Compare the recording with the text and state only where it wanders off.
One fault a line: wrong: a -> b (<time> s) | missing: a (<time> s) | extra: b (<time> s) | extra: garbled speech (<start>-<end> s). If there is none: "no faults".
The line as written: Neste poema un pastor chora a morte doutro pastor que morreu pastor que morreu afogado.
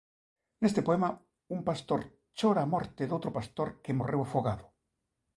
missing: pastor que morreu (4.2 s)